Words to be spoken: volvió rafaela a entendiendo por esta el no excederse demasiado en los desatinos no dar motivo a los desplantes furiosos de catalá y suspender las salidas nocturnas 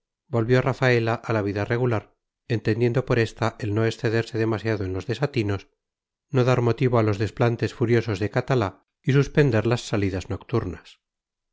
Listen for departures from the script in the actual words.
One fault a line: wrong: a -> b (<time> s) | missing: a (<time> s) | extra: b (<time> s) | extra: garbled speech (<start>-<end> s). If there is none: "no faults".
extra: la vida regular (1.3 s)